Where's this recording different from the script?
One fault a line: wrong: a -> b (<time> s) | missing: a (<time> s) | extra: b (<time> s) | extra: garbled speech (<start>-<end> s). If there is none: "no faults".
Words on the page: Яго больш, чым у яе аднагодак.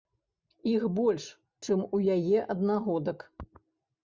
wrong: Яго -> Іх (0.7 s)